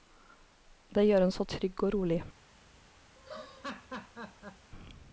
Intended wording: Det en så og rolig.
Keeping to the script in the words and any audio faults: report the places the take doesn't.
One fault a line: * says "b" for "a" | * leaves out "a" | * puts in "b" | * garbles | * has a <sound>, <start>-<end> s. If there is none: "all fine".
* puts in "gjør"
* puts in "trygg"
* has a laugh, 3.2-4.7 s